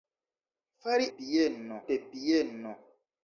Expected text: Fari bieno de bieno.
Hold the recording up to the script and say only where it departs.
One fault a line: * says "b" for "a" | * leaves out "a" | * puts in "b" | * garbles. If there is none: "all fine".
all fine